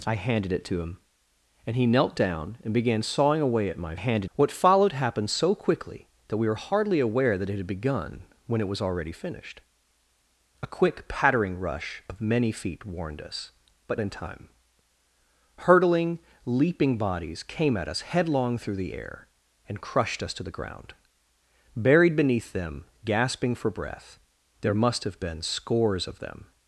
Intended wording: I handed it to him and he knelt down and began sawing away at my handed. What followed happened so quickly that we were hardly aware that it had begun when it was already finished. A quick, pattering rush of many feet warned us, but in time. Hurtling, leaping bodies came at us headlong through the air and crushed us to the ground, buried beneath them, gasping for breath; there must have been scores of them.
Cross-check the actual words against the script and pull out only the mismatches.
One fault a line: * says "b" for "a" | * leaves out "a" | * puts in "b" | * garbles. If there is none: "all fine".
all fine